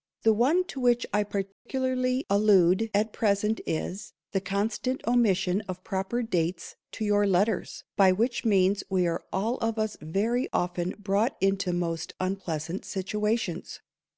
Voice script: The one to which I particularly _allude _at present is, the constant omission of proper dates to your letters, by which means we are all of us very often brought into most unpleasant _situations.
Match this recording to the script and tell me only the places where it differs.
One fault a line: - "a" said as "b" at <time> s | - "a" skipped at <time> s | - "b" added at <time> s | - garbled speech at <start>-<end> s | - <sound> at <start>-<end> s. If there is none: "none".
- dropout at 1.5-1.7 s